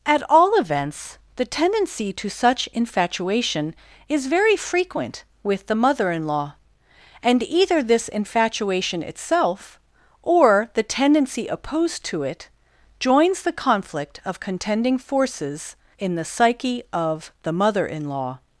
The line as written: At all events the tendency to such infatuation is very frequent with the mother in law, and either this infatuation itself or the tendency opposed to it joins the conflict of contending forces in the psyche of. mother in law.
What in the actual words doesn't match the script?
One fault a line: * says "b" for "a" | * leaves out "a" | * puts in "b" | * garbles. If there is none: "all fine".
* puts in "the"